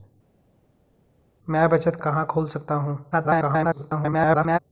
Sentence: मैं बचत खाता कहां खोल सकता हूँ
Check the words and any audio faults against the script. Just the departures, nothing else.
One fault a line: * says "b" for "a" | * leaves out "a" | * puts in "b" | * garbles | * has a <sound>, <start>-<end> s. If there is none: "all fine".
* leaves out "खाता"
* garbles